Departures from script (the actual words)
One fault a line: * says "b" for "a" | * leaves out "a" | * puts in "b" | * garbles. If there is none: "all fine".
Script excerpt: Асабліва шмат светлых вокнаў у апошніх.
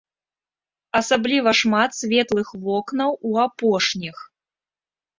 all fine